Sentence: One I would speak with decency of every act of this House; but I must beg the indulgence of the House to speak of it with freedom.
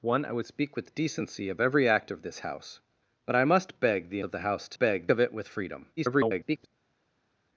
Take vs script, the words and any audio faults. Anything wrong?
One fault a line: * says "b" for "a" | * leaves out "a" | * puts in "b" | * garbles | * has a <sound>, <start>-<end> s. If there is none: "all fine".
* leaves out "indulgence"
* says "beg" for "speak"
* garbles